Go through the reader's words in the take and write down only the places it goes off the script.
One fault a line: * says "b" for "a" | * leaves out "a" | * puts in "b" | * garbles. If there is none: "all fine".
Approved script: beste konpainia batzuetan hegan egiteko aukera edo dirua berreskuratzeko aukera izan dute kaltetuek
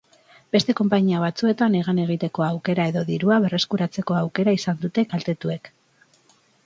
all fine